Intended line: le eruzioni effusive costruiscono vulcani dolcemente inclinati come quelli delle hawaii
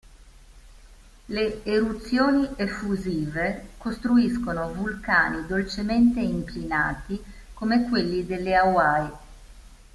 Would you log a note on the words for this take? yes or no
no